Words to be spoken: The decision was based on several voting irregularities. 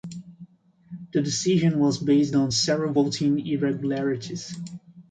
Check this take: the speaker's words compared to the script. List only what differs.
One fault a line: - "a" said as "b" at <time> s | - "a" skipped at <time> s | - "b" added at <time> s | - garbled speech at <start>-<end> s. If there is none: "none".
none